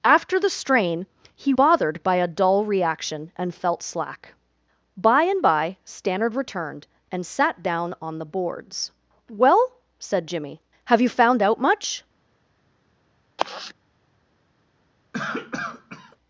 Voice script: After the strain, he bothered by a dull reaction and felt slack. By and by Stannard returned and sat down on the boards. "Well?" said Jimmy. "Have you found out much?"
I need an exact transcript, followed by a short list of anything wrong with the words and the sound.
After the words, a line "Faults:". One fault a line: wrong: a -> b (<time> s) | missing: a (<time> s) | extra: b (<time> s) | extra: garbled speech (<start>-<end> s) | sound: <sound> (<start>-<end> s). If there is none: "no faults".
After the strain, he bothered by a dull reaction and felt slack. By and by Stannard returned and sat down on the boards. "Well?" said Jimmy. "Have you found out much?"
Faults:
sound: sigh (13.4-13.7 s)
sound: cough (15.1-16.2 s)